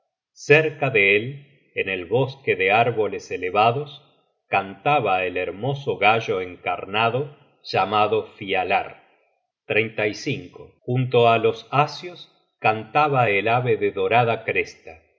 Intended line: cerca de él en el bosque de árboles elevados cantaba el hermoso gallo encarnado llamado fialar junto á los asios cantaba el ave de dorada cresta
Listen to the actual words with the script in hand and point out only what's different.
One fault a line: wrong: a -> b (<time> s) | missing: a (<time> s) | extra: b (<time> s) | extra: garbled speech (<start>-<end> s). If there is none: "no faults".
no faults